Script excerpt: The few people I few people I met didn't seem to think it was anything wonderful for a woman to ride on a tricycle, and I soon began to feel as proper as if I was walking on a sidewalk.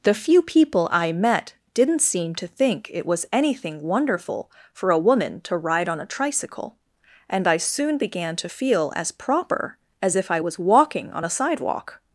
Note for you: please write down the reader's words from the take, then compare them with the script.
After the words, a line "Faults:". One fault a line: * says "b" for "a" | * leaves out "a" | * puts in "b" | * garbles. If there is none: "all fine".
The few people I met didn't seem to think it was anything wonderful for a woman to ride on a tricycle, and I soon began to feel as proper as if I was walking on a sidewalk.
Faults:
* leaves out "few people I"